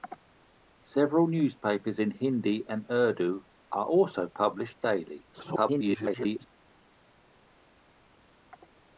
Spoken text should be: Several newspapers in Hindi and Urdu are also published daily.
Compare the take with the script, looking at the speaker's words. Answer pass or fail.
fail